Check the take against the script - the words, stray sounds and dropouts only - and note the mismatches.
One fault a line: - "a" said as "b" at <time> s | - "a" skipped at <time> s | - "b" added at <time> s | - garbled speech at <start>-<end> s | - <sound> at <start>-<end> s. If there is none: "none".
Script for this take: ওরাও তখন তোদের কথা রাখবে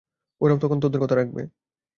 none